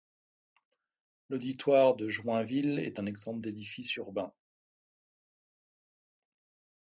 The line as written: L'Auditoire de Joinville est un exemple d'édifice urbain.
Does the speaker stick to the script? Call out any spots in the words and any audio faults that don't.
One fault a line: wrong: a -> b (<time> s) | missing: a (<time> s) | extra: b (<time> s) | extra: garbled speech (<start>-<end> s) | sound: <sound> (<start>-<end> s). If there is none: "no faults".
no faults